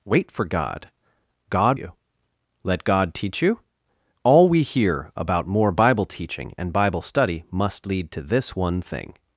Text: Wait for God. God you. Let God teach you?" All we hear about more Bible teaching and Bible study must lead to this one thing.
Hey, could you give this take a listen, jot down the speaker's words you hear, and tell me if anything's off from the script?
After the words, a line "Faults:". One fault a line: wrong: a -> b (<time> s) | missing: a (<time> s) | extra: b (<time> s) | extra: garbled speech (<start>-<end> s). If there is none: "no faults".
Wait for God. God you. Let God teach you?" All we hear about more Bible teaching and Bible study must lead to this one thing.
Faults:
no faults